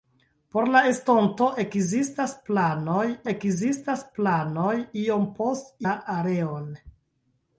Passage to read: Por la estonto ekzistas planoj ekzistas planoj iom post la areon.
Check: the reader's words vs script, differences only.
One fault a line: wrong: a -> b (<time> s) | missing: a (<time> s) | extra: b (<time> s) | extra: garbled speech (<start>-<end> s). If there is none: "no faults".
no faults